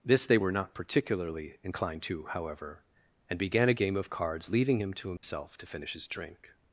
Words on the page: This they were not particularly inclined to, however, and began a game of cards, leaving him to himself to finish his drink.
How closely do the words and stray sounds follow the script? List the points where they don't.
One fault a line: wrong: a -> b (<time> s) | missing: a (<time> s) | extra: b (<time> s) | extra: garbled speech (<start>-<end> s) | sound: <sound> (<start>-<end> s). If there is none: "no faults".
sound: dropout (5.2-5.2 s)